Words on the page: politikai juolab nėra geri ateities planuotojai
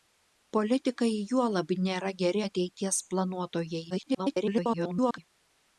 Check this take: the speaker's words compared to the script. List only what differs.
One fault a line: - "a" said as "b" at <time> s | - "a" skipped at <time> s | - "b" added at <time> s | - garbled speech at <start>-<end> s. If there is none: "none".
- garbled speech at 3.9-5.2 s